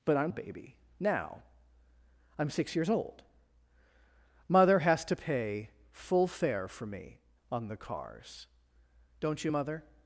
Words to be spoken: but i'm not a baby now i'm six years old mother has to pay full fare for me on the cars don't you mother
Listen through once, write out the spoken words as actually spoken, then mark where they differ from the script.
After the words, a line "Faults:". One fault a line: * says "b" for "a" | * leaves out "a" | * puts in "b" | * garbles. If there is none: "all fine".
but i'm a baby now i'm six years old mother has to pay full fare for me on the cars don't you mother
Faults:
* leaves out "not"